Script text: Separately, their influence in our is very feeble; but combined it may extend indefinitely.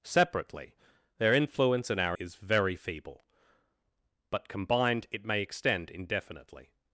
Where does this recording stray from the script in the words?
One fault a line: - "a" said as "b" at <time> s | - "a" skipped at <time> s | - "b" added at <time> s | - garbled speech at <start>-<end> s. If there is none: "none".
none